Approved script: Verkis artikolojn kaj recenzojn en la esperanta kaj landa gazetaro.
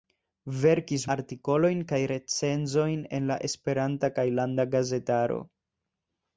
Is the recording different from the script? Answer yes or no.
no